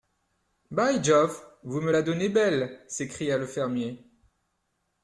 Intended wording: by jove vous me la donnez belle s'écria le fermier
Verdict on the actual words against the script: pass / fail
pass